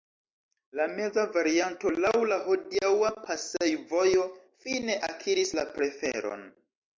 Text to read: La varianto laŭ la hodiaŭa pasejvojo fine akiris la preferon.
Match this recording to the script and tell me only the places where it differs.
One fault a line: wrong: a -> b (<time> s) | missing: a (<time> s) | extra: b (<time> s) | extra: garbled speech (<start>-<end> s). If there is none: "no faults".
extra: meza (0.9 s)